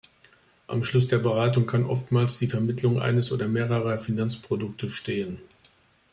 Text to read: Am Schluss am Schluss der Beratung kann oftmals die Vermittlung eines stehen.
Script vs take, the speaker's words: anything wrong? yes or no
yes